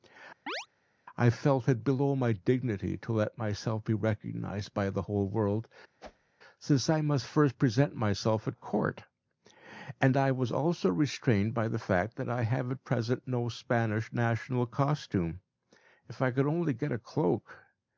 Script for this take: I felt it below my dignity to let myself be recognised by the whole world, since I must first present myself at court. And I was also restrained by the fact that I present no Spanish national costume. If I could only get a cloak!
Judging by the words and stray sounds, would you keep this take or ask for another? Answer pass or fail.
fail